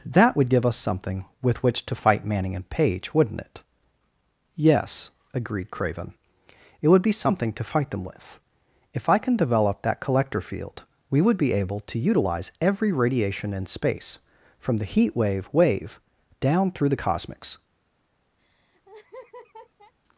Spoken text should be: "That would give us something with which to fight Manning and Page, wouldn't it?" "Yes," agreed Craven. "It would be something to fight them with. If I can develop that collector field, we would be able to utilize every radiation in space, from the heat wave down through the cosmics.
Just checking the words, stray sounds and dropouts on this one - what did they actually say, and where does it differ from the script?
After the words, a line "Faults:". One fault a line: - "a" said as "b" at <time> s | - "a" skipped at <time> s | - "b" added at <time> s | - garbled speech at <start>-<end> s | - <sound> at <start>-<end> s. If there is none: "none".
"That would give us something with which to fight Manning and Page, wouldn't it?" "Yes," agreed Craven. "It would be something to fight them with. If I can develop that collector field, we would be able to utilize every radiation in space, from the heat wave wave down through the cosmics.
Faults:
- "wave" added at 15.5 s
- laugh at 18.4-19.9 s